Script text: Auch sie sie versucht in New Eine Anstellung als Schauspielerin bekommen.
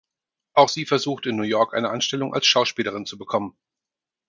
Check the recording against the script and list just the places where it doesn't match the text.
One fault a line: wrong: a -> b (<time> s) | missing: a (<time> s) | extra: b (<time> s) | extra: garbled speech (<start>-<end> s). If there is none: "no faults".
missing: sie (0.8 s)
extra: York (1.4 s)
extra: zu (3.0 s)